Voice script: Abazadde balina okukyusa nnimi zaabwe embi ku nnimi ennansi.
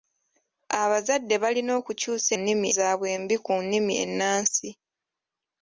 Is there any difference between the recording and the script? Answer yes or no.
no